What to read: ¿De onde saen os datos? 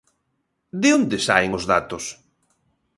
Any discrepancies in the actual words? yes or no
no